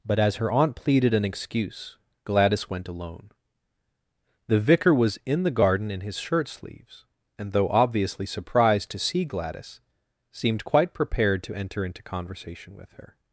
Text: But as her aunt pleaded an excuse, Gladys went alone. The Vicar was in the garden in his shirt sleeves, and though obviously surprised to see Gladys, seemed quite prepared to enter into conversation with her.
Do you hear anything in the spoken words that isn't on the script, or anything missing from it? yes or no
no